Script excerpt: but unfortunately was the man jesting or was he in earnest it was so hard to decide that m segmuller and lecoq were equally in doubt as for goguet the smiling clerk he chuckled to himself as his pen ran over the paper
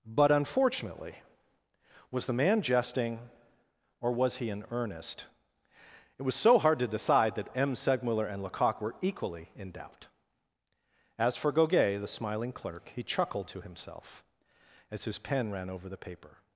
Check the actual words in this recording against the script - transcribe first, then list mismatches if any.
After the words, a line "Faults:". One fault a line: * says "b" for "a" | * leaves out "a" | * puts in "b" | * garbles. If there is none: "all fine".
but unfortunately was the man jesting or was he in earnest it was so hard to decide that m segmuller and lecoq were equally in doubt as for goguet the smiling clerk he chuckled to himself as his pen ran over the paper
Faults:
all fine